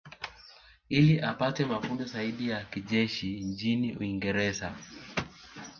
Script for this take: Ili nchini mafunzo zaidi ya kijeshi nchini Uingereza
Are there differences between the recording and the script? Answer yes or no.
yes